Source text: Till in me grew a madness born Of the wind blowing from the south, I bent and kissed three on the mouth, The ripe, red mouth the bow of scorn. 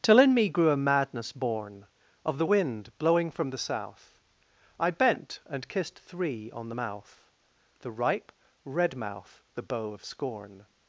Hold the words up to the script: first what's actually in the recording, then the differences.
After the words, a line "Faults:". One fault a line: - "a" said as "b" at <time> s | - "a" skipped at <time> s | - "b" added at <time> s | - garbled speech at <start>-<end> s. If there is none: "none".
Till in me grew a madness born Of the wind blowing from the south, I bent and kissed three on the mouth, The ripe, red mouth the bow of scorn.
Faults:
none